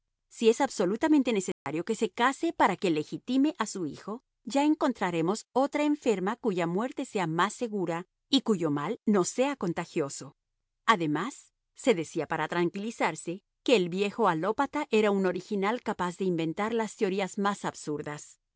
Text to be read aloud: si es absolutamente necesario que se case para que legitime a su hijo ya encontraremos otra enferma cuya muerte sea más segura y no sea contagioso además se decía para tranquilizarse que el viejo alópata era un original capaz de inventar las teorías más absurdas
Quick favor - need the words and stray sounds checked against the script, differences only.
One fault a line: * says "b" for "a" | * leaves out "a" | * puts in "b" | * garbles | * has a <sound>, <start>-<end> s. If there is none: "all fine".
* has a dropout, 1.5-1.7 s
* puts in "cuyo mal"